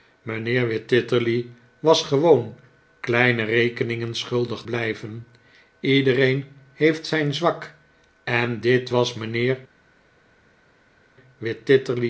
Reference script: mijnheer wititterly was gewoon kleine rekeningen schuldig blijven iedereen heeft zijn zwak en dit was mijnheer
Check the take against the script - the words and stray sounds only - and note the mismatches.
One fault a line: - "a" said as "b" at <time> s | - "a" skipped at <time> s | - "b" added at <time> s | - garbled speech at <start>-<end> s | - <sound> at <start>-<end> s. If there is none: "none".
none